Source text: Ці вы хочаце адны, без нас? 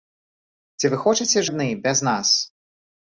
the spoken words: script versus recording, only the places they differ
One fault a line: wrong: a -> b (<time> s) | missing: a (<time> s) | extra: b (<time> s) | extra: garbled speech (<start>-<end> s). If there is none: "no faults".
no faults